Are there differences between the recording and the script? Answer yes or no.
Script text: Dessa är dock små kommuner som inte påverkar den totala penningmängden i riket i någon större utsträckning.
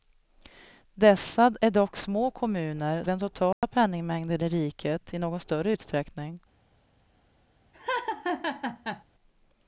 yes